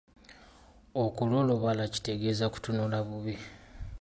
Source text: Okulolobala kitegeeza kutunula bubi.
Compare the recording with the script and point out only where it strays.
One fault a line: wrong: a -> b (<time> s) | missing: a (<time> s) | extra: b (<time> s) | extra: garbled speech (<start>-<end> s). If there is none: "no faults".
no faults